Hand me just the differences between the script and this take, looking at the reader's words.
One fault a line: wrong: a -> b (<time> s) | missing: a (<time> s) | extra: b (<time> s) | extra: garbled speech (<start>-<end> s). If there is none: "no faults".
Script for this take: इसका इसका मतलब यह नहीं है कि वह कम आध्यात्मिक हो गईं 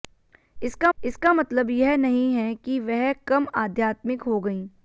no faults